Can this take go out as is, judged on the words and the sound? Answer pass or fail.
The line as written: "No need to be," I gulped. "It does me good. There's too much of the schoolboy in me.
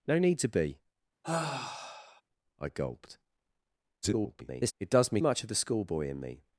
fail